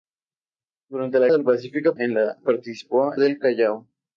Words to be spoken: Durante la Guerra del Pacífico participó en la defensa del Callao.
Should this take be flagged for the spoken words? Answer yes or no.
yes